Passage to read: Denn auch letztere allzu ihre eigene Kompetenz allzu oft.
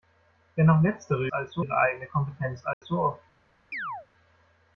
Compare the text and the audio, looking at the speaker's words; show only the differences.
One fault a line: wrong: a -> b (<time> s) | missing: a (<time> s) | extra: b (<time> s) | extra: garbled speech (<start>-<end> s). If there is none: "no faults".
no faults